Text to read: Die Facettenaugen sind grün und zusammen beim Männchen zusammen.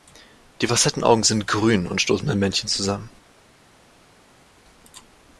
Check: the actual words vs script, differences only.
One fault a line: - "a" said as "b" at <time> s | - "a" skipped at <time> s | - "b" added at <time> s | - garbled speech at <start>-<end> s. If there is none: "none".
- "zusammen" said as "stoßen" at 2.0 s